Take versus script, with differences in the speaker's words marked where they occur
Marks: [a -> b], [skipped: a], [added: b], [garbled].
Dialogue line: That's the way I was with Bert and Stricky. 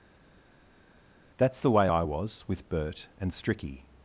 That's the way I was with Bert and Stricky.